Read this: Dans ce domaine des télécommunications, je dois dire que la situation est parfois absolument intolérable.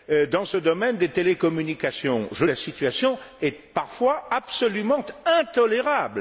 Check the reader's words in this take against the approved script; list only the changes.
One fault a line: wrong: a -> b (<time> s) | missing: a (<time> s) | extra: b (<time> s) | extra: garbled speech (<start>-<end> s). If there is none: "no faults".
missing: dois dire que (2.5 s)